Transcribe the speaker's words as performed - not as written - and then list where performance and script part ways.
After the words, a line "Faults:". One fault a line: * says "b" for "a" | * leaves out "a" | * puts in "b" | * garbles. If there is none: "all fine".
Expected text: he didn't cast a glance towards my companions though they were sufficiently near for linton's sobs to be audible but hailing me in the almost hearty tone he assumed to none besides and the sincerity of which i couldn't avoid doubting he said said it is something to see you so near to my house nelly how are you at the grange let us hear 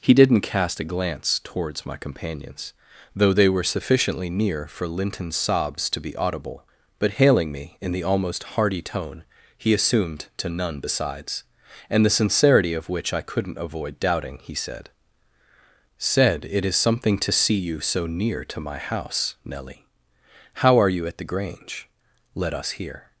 he didn't cast a glance towards my companions though they were sufficiently near for linton's sobs to be audible but hailing me in the almost hearty tone he assumed to none besides and the sincerity of which i couldn't avoid doubting he said said it is something to see you so near to my house nelly how are you at the grange let us hear
Faults:
all fine